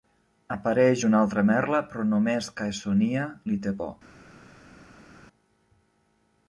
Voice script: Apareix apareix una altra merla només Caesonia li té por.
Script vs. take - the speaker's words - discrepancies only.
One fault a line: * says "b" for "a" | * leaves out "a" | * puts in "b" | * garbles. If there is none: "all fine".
* leaves out "apareix"
* puts in "però"